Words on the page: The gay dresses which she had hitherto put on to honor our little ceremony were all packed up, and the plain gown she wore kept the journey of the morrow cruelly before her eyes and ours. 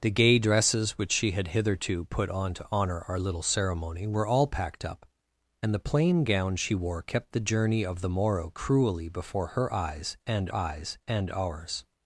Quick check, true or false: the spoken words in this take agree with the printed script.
false